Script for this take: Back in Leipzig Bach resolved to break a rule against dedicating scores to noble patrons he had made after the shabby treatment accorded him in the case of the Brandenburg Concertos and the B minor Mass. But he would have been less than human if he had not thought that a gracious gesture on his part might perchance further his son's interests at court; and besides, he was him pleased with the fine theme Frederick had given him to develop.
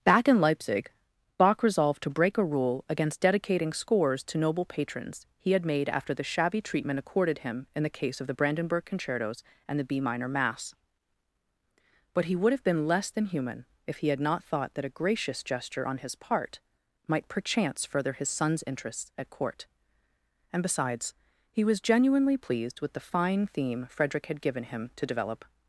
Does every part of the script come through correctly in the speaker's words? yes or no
no